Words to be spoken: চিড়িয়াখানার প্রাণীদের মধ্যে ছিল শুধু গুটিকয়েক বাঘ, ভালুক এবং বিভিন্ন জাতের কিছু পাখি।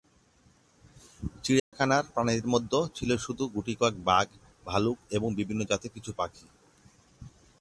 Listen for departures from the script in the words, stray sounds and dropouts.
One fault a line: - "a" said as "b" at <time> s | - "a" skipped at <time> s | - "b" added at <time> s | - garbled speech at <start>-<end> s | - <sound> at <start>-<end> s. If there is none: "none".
- dropout at 1.6-1.7 s